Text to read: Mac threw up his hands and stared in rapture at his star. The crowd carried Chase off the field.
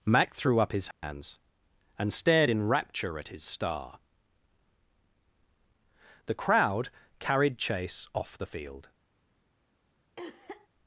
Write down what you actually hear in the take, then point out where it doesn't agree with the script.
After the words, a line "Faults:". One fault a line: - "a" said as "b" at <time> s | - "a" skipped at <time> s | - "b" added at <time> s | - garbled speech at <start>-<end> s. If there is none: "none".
Mac threw up his hands and stared in rapture at his star. The crowd carried Chase off the field.
Faults:
none